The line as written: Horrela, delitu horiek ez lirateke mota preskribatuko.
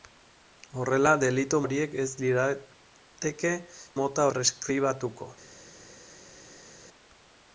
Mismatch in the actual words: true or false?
false